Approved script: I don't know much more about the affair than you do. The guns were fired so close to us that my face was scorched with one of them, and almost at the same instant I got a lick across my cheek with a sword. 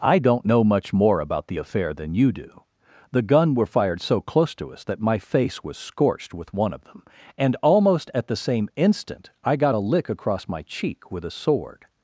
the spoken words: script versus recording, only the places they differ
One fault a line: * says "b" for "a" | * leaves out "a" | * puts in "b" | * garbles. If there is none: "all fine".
* says "gun" for "guns"